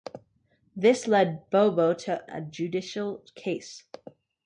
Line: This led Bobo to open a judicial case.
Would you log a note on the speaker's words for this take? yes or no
yes